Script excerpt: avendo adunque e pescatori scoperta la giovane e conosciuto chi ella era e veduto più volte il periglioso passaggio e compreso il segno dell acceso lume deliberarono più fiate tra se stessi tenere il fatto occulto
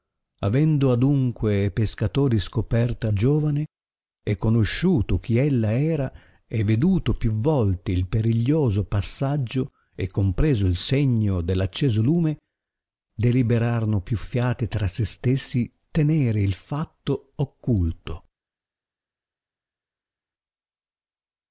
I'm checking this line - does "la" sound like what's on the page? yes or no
no